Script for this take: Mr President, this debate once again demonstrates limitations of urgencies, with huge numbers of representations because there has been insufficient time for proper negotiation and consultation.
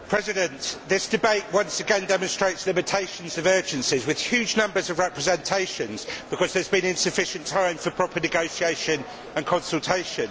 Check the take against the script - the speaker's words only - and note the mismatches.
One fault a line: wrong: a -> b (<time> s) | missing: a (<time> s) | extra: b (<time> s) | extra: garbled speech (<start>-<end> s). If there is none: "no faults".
no faults